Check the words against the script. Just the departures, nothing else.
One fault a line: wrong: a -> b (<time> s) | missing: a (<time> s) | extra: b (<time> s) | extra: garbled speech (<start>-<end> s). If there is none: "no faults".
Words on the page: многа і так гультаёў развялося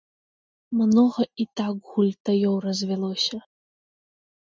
no faults